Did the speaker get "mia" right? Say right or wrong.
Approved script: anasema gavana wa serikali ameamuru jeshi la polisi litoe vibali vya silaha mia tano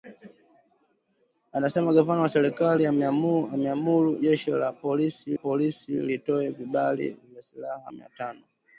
right